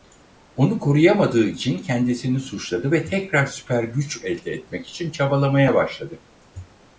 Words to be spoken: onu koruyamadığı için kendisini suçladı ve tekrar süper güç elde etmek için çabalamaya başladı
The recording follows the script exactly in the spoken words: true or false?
true